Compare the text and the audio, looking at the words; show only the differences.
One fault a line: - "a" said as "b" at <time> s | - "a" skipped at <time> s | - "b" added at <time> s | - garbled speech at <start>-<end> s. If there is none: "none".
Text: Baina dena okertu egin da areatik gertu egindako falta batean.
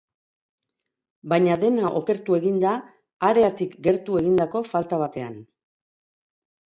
none